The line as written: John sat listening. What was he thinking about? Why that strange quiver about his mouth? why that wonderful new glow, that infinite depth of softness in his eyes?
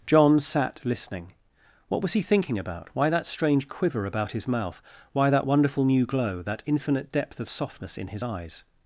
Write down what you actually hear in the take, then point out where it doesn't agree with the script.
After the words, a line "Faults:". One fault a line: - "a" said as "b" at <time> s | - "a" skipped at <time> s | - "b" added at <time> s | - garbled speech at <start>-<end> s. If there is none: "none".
John sat listening. What was he thinking about? Why that strange quiver about his mouth? why that wonderful new glow, that infinite depth of softness in his eyes?
Faults:
none